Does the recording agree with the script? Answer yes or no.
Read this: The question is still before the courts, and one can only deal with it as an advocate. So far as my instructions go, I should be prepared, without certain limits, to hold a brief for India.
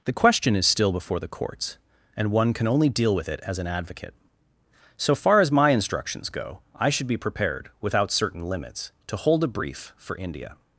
yes